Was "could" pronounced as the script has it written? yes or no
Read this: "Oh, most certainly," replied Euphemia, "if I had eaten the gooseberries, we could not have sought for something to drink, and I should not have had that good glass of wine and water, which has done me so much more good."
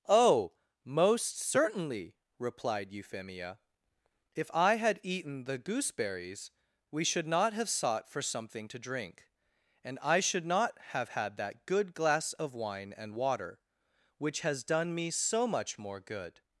no